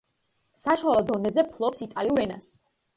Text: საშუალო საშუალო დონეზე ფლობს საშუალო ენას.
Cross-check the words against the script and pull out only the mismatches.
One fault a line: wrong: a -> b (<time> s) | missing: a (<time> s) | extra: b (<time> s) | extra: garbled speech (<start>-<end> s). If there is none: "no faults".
missing: საშუალო (1.1 s)
wrong: საშუალო -> იტალიურ (1.9 s)